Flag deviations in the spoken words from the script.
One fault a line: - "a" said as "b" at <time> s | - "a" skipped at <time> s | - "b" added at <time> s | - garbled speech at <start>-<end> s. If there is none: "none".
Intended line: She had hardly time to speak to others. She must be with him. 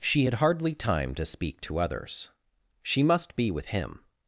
none